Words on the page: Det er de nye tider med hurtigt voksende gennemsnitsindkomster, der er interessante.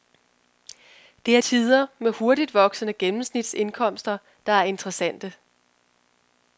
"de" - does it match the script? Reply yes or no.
no